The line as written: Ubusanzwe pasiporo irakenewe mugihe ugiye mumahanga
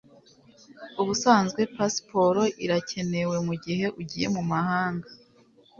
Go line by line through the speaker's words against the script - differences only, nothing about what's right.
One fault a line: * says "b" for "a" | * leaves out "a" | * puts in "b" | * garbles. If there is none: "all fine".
all fine